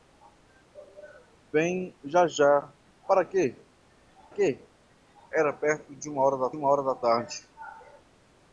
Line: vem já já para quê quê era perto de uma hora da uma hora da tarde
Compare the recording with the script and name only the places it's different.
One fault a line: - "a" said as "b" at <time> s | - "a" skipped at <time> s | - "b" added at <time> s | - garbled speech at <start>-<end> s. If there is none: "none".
none